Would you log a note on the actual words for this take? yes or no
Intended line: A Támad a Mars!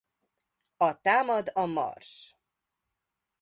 no